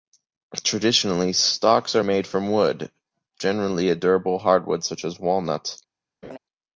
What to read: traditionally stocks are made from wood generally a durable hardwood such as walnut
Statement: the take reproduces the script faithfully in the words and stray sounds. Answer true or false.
false